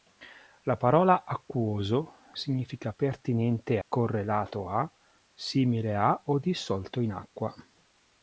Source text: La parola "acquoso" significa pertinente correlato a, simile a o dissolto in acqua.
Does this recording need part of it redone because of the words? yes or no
no